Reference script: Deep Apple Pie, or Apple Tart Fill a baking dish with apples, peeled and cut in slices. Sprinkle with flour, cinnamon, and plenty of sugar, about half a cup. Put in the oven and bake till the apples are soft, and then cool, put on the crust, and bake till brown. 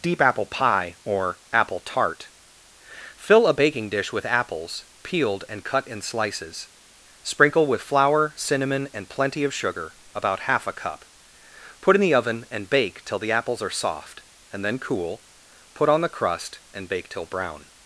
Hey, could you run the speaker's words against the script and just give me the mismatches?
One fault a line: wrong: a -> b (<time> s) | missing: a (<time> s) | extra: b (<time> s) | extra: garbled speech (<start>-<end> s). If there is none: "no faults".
no faults